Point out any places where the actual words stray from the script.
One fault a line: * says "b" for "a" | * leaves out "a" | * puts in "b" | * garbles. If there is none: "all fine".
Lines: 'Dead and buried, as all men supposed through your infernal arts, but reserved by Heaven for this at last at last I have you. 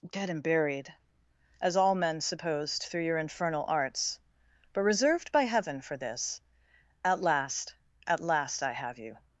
all fine